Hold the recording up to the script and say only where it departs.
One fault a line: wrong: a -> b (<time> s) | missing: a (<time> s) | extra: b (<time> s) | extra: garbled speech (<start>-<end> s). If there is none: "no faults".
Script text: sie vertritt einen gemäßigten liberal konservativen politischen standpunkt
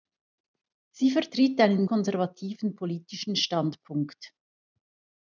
missing: gemäßigten liberal (1.9 s)